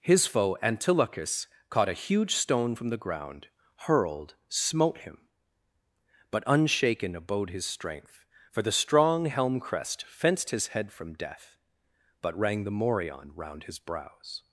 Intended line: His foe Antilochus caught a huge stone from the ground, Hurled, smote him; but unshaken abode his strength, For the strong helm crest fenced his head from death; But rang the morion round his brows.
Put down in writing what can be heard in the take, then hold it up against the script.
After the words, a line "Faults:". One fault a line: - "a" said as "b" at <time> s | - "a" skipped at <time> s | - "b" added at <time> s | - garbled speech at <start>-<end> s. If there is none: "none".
His foe Antilochus caught a huge stone from the ground, Hurled, smote him; but unshaken abode his strength, For the strong helm crest fenced his head from death; But rang the morion round his brows.
Faults:
none